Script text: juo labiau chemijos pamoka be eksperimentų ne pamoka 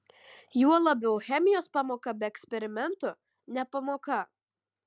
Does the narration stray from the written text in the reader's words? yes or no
no